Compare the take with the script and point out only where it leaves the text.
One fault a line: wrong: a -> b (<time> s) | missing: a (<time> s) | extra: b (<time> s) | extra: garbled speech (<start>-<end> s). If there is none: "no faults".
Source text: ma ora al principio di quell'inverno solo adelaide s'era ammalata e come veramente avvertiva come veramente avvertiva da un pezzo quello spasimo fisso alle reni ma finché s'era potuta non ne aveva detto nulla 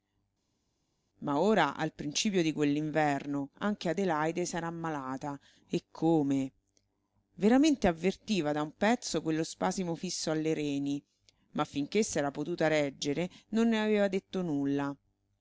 wrong: solo -> anche (3.6 s)
missing: come veramente avvertiva (8.5 s)
extra: reggere (12.7 s)